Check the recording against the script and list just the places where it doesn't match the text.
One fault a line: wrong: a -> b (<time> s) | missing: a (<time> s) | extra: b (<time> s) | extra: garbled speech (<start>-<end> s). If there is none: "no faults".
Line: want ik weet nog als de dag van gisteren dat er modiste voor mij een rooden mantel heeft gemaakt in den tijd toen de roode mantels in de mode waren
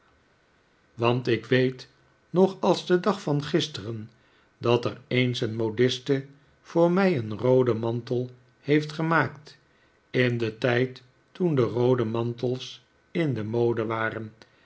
extra: eens een (5.1 s)